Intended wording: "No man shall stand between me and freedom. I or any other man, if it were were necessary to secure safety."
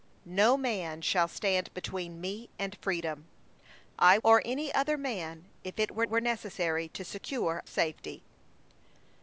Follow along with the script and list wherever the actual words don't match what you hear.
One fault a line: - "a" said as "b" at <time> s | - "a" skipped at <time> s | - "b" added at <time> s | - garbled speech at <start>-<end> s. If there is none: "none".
none